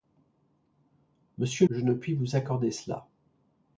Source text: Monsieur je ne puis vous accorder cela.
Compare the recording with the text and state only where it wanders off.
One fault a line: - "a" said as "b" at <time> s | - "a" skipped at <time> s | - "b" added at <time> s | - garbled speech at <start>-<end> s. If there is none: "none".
none